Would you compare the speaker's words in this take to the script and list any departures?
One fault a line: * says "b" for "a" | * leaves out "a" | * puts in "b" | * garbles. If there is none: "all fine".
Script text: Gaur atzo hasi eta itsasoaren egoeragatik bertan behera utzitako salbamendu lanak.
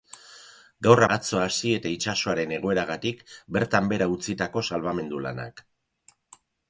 all fine